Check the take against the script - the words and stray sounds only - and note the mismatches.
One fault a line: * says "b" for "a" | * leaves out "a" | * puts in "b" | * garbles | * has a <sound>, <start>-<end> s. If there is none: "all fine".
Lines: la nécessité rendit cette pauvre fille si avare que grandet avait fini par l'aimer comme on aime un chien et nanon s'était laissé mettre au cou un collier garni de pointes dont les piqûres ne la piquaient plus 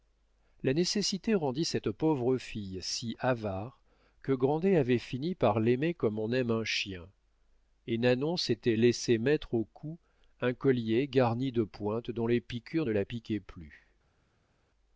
all fine